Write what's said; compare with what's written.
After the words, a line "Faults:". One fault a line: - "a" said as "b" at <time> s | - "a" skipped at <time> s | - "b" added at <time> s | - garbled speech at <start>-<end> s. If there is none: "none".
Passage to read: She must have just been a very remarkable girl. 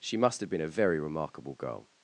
She must have been a very remarkable girl.
Faults:
- "just" skipped at 0.5 s